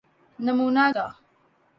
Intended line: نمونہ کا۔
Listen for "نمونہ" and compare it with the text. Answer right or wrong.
right